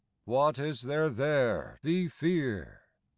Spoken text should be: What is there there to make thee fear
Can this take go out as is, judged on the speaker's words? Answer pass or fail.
fail